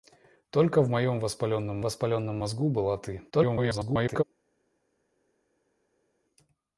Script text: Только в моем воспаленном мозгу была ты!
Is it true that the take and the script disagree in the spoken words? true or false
true